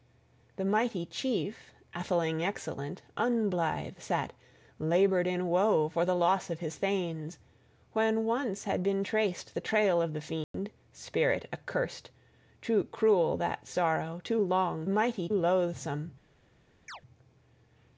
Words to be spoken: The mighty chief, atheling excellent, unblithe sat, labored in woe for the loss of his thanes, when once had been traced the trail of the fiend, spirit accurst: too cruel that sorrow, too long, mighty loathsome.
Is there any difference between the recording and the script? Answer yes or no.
no